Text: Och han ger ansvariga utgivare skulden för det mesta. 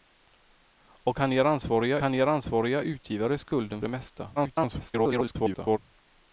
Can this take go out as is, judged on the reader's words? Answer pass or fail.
fail